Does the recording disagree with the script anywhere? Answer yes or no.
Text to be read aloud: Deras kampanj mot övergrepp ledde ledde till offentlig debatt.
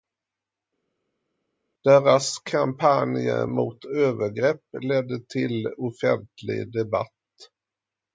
yes